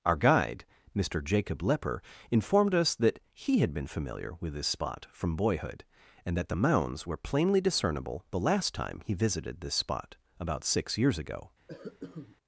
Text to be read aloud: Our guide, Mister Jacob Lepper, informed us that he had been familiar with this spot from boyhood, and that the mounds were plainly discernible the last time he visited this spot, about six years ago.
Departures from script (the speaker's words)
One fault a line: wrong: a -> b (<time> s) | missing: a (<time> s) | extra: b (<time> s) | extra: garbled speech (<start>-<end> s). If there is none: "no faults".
no faults